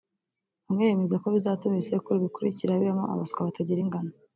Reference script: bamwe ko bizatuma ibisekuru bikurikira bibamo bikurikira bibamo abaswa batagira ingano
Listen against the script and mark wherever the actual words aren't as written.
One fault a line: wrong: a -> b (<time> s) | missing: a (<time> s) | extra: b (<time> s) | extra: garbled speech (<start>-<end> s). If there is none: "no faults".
extra: bemeza (0.9 s)
missing: bikurikira bibamo (3.0 s)